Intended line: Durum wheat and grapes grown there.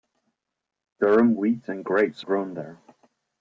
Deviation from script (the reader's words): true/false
false